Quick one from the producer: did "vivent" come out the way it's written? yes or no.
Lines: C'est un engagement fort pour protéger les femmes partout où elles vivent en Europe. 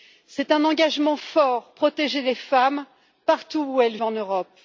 no